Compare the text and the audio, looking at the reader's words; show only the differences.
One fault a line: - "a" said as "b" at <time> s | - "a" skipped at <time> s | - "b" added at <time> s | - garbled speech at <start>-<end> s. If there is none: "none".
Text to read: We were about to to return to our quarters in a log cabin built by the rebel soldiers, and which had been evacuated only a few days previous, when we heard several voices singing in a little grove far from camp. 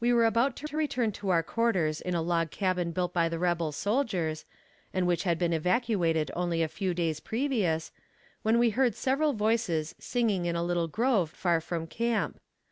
none